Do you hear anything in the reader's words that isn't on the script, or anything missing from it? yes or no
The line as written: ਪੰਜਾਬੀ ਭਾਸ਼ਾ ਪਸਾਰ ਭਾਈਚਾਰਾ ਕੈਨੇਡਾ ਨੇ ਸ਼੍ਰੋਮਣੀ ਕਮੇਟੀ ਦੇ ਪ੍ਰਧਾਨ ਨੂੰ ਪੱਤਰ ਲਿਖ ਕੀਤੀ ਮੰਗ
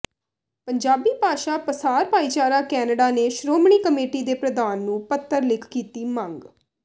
no